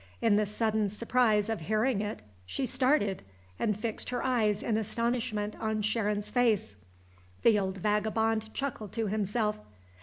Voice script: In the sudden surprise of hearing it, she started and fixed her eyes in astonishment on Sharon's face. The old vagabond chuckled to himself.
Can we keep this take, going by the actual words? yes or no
yes